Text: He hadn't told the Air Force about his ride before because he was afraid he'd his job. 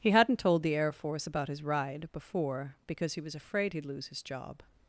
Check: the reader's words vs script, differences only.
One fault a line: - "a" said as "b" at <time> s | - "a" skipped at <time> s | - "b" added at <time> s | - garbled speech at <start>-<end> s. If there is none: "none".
- "lose" added at 3.8 s